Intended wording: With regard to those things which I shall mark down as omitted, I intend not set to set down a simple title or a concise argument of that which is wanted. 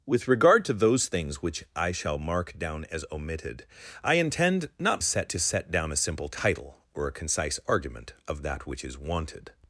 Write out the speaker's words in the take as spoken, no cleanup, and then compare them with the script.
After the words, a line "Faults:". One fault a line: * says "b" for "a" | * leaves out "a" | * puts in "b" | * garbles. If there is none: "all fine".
With regard to those things which I shall mark down as omitted, I intend not set to set down a simple title or a concise argument of that which is wanted.
Faults:
all fine